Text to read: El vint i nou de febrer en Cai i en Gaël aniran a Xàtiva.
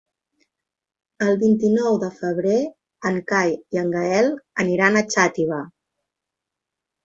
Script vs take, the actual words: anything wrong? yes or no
no